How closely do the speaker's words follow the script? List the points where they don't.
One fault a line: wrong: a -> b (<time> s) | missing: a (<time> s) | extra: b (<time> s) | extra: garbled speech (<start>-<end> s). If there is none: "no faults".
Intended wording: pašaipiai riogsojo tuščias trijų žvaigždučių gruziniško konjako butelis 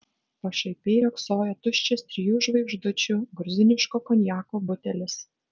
no faults